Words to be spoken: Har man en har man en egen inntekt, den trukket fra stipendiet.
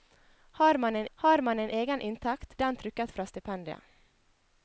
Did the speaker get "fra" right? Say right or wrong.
right